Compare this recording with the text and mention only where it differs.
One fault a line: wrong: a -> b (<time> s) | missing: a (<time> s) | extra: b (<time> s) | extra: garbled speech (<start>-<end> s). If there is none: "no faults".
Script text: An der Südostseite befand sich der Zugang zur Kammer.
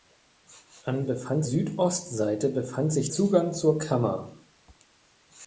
wrong: der -> befand (1.0 s)
missing: der (3.1 s)